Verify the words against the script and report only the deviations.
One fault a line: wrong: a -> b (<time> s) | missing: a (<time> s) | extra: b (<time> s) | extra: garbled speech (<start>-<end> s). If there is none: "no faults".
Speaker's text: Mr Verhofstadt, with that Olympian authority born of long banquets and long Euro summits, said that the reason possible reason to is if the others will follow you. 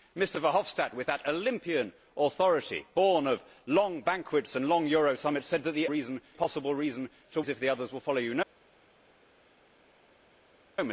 no faults